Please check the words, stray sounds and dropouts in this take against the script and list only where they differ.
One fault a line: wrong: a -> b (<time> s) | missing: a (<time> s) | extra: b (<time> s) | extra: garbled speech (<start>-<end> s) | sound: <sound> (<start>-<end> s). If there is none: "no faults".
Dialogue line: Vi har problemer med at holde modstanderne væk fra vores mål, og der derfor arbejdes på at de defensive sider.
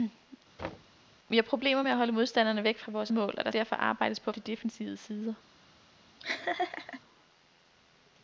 sound: thud (0.6-1.0 s)
sound: laugh (6.2-7.0 s)